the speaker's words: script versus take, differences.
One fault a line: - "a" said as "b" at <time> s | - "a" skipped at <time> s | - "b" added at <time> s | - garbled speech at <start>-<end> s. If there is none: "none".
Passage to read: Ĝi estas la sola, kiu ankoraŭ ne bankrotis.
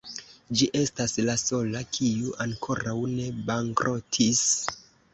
none